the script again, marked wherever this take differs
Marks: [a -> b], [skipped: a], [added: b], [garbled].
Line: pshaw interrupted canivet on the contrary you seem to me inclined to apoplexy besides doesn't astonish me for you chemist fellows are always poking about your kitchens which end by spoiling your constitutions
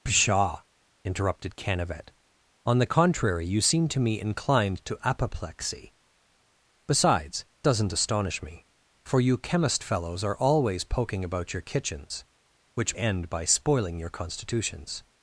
pshaw interrupted canivet on the contrary you seem to me inclined to apoplexy besides doesn't astonish me for you chemist fellows are always poking about your kitchens which end by spoiling your constitutions